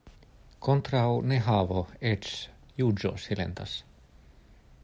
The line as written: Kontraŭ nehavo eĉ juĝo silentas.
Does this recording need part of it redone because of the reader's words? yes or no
no